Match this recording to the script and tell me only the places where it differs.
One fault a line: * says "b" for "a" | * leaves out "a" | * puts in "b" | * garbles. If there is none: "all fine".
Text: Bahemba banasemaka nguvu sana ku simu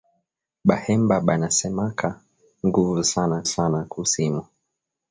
* puts in "sana"